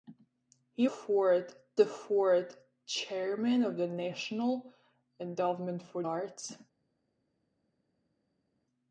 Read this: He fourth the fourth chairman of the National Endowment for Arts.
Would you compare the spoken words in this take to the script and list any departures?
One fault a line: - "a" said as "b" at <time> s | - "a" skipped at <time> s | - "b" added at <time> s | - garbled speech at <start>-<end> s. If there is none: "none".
none